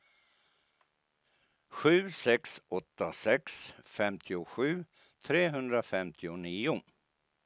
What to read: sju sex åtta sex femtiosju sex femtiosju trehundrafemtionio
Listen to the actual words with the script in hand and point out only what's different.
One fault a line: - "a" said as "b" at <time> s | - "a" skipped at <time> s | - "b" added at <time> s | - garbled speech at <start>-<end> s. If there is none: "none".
- "sex femtiosju" skipped at 4.8 s